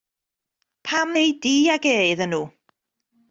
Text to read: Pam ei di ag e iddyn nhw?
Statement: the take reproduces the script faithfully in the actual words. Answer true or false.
true